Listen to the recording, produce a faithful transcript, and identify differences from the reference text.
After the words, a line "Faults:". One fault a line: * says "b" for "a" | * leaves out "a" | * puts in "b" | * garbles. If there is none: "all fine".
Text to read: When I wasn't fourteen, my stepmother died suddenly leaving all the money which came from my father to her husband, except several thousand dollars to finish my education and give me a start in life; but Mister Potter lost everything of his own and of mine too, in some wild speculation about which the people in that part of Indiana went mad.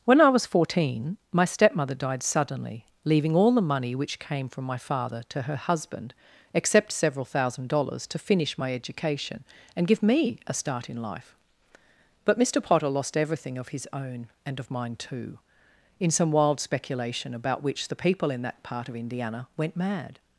When I was fourteen, my stepmother died suddenly leaving all the money which came from my father to her husband, except several thousand dollars to finish my education and give me a start in life; but Mister Potter lost everything of his own and of mine too, in some wild speculation about which the people in that part of Indiana went mad.
Faults:
* says "was" for "wasn't"